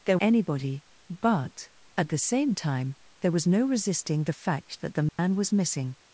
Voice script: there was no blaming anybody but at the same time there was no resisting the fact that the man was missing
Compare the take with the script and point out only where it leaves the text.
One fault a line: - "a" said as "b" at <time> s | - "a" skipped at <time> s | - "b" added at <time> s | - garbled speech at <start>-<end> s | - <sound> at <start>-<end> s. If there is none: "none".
- "was no blaming" skipped at 0.2 s
- dropout at 5.1-5.2 s